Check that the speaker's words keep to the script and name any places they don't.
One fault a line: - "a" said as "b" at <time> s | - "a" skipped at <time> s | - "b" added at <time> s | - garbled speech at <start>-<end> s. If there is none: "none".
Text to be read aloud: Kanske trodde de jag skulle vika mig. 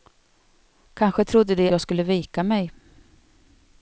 none